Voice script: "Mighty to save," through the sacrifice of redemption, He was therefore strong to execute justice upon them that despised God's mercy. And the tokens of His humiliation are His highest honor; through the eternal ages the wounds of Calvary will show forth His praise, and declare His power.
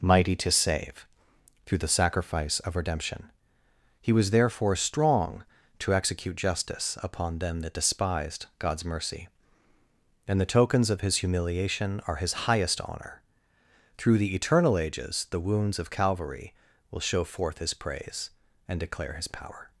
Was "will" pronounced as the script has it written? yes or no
yes